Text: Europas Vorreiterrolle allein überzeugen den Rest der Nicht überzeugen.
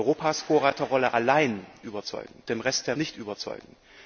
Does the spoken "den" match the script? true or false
true